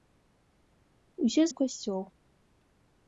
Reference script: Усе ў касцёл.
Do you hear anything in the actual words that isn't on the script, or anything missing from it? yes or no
no